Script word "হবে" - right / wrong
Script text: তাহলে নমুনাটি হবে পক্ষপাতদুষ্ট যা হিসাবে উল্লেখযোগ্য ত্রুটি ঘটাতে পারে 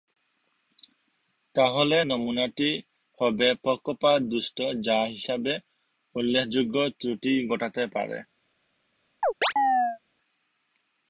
right